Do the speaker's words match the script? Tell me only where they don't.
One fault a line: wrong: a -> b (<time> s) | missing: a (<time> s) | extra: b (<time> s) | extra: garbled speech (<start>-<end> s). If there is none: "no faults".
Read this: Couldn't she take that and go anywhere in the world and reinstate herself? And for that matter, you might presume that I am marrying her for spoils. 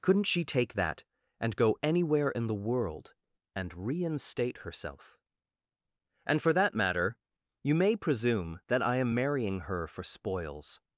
wrong: might -> may (7.8 s)